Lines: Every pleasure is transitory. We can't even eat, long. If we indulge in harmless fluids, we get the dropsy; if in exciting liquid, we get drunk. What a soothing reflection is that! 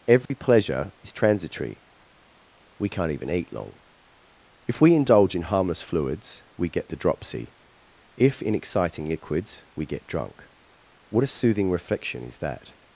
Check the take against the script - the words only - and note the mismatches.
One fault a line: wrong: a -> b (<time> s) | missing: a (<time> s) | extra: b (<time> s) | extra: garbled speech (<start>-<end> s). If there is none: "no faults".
wrong: liquid -> liquids (9.1 s)